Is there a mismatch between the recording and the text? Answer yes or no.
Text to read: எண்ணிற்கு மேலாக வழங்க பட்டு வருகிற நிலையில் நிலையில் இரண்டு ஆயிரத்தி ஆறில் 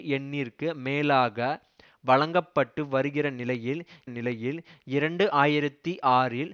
no